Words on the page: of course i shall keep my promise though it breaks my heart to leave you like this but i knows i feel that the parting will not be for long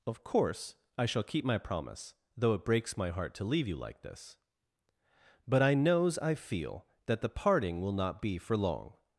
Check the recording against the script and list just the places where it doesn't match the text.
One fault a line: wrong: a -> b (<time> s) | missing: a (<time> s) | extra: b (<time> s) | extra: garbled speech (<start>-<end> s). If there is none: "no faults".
no faults